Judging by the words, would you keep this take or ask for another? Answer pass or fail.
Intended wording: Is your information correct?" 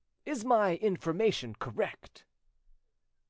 fail